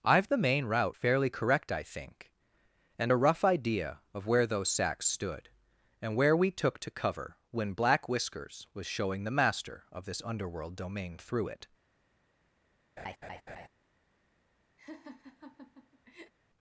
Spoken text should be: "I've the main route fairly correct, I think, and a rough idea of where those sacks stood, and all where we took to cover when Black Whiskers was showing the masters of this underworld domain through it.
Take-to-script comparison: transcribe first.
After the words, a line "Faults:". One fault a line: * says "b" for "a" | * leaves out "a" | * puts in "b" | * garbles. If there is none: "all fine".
"I've the main route fairly correct, I think, and a rough idea of where those sacks stood, and where we took to cover when Black Whiskers was showing the master of this underworld domain through it.
Faults:
* leaves out "all"
* says "master" for "masters"